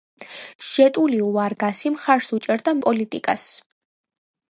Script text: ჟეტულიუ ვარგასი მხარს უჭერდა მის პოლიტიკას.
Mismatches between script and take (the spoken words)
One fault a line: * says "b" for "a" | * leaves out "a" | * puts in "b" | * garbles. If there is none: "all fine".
* leaves out "მის"